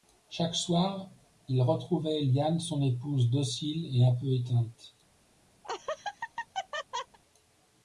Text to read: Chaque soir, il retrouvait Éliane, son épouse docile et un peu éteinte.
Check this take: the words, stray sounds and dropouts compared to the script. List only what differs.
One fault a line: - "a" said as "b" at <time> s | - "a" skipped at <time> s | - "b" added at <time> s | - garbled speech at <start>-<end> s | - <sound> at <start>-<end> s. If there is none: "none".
- laugh at 5.6-7.2 s